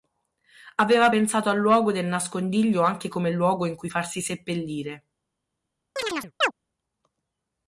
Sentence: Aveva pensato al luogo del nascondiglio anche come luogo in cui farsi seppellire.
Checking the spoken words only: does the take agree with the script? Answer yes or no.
yes